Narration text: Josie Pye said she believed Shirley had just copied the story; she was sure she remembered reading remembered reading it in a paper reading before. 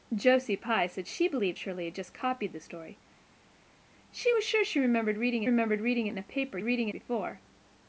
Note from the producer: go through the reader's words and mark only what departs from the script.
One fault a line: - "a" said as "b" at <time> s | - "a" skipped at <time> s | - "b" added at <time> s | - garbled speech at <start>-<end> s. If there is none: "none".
none